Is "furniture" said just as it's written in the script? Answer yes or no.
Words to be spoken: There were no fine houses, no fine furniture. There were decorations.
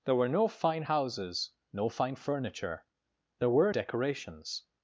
yes